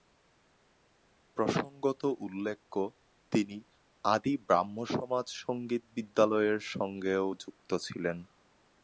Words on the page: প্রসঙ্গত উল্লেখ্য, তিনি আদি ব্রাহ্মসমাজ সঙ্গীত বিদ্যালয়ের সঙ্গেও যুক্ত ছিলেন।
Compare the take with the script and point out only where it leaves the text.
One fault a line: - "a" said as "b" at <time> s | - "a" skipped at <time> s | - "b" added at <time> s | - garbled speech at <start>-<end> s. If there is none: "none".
none